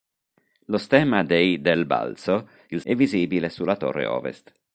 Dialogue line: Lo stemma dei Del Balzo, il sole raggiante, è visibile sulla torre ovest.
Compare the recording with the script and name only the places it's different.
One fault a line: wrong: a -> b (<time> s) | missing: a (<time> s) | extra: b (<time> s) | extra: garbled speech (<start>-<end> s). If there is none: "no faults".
missing: sole raggiante (2.8 s)